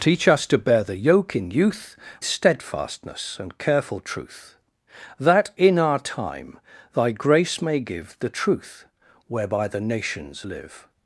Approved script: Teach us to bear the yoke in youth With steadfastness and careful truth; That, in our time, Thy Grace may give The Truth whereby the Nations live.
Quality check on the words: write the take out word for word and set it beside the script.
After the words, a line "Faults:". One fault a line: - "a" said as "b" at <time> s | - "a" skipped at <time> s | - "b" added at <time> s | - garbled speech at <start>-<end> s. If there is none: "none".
Teach us to bear the yoke in youth Steadfastness and careful truth; That, in our time, Thy Grace may give The Truth whereby the Nations live.
Faults:
- "With" skipped at 1.9 s